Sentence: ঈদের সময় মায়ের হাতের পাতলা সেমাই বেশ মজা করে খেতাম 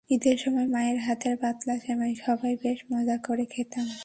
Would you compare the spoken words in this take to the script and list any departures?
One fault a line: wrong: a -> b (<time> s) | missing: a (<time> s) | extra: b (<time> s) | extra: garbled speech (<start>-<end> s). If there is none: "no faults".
extra: সবাই (2.2 s)